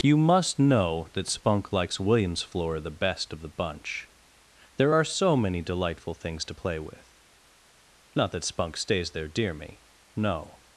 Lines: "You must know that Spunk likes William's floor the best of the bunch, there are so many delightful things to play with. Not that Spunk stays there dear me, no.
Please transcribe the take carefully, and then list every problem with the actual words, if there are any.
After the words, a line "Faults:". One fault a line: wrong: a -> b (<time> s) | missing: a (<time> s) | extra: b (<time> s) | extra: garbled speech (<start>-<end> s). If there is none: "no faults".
"You must know that Spunk likes William's floor the best of the bunch, there are so many delightful things to play with. Not that Spunk stays there dear me, no.
Faults:
no faults